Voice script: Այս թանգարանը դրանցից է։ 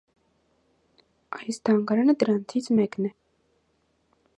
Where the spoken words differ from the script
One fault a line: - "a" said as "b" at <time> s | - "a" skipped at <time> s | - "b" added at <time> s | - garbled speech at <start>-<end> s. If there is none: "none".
- "մեկն" added at 2.8 s